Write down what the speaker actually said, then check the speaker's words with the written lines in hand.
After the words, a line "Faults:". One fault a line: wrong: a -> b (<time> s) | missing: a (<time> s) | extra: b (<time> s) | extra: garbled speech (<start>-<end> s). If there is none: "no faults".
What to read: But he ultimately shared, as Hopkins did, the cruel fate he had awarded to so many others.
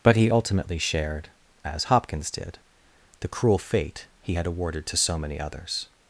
But he ultimately shared, as Hopkins did, the cruel fate he had awarded to so many others.
Faults:
no faults